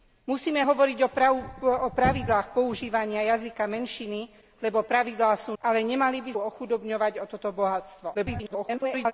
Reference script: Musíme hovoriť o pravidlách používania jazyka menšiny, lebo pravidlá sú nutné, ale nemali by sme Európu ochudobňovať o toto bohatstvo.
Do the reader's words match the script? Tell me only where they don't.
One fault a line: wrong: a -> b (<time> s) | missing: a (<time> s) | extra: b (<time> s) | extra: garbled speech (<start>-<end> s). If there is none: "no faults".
missing: nutné (5.6 s)
missing: sme Európu (6.3 s)
extra: garbled speech (8.1-9.1 s)